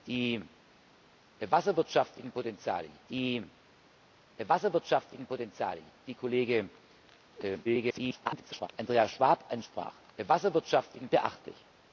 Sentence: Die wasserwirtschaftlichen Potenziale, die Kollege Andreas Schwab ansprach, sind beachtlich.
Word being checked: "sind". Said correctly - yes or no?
no